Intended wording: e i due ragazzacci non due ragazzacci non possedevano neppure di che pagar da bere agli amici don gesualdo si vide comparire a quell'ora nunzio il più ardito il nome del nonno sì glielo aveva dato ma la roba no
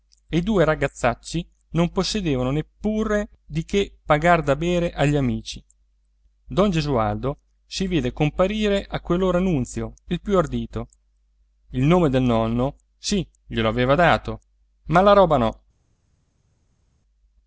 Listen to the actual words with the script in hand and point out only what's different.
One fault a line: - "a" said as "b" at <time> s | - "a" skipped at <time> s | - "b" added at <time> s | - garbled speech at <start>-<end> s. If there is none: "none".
- "due ragazzacci non" skipped at 1.9 s